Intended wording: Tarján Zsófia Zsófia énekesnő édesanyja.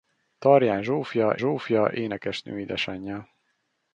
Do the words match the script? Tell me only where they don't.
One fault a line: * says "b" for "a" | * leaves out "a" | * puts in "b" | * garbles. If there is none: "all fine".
all fine